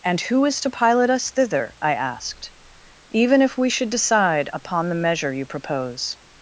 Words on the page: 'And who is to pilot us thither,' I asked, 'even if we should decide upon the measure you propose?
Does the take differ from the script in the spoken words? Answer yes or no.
no